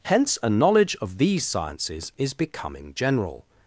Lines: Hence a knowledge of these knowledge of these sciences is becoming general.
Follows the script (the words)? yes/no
no